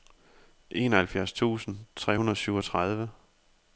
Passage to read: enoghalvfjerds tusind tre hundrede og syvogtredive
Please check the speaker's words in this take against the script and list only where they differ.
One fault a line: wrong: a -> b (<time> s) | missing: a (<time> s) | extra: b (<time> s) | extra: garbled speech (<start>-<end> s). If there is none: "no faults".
no faults